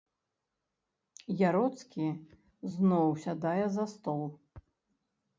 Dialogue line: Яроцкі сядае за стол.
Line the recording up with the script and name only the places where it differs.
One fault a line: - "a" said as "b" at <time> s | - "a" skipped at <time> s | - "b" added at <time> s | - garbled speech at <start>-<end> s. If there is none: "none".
- "зноў" added at 2.7 s